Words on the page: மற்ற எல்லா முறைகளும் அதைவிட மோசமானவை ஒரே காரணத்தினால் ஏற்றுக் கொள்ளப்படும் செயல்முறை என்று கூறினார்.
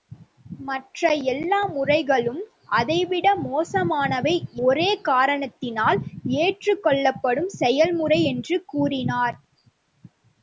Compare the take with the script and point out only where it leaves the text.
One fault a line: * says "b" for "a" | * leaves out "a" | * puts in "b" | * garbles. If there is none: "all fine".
all fine